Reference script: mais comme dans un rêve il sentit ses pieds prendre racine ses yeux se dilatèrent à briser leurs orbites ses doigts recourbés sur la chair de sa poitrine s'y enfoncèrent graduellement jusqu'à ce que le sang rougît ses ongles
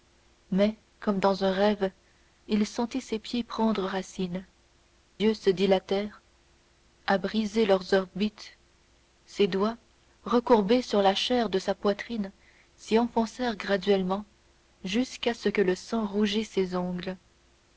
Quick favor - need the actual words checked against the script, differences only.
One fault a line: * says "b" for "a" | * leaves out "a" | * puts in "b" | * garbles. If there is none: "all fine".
* leaves out "ses"